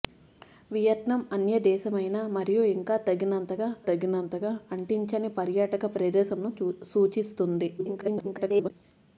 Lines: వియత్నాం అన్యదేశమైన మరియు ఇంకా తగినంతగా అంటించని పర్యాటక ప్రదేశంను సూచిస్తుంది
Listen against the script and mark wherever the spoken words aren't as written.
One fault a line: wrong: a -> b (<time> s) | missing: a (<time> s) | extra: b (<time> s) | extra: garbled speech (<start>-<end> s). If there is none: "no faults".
extra: తగినంతగా (3.9 s)
extra: garbled speech (7.8-8.7 s)